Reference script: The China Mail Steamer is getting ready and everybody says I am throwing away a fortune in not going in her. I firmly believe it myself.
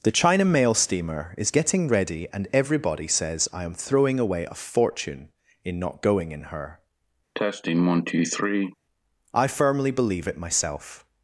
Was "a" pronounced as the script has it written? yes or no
yes